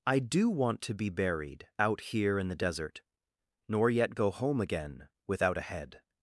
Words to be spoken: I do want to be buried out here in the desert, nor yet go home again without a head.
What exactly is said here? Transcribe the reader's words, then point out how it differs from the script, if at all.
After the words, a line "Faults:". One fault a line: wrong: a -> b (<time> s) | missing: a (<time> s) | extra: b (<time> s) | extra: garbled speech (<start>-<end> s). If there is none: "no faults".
I do want to be buried out here in the desert, nor yet go home again without a head.
Faults:
no faults